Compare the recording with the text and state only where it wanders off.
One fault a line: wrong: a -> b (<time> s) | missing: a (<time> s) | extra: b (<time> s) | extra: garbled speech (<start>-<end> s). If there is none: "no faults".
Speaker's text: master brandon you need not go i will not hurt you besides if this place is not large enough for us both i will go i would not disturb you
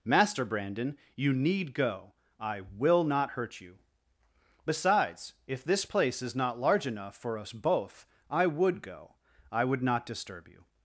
missing: not (1.7 s)
wrong: will -> would (8.5 s)